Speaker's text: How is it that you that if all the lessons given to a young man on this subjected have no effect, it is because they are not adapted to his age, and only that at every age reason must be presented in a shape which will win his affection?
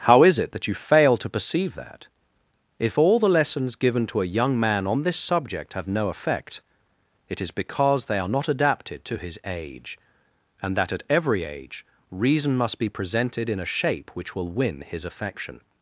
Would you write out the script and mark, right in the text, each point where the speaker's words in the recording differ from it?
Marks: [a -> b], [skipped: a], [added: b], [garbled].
How is it that you [added: fail to perceive] that if all the lessons given to a young man on this [subjected -> subject] have no effect, it is because they are not adapted to his age, and [skipped: only] that at every age reason must be presented in a shape which will win his affection?